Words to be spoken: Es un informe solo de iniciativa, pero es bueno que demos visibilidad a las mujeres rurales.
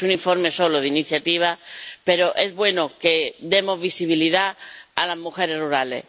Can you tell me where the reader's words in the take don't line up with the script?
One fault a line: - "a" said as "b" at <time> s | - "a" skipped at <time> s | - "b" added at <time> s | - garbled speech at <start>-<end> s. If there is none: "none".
none